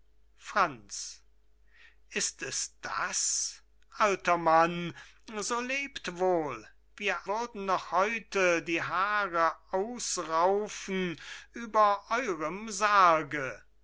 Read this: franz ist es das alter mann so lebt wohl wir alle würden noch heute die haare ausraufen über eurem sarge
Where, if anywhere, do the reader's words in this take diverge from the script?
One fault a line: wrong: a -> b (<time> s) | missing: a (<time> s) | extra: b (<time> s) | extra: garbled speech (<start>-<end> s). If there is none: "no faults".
missing: alle (7.3 s)